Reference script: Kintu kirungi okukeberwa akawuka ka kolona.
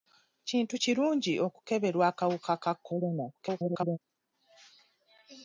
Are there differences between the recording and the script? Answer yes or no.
yes